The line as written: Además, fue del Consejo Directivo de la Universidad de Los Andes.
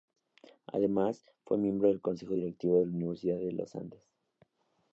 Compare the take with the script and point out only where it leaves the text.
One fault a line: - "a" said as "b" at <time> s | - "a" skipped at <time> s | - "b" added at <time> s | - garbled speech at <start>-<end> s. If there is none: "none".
- "miembro" added at 1.6 s